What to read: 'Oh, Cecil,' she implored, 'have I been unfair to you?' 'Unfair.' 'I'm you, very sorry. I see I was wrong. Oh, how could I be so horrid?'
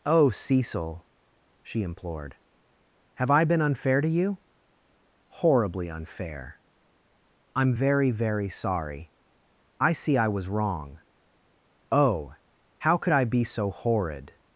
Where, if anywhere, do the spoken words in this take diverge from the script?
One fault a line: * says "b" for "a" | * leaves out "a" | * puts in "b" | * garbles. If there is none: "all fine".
* puts in "Horribly"
* says "very" for "you"